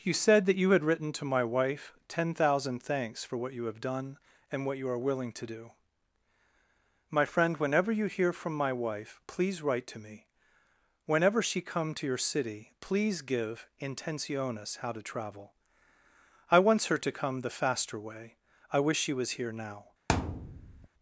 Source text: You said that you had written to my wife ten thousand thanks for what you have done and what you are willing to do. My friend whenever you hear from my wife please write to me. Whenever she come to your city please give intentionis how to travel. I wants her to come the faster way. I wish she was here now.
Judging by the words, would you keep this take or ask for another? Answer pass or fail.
pass